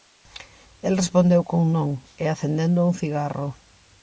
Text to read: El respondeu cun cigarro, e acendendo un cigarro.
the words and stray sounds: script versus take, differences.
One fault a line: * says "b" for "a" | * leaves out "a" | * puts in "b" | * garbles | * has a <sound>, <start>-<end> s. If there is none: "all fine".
* says "non" for "cigarro"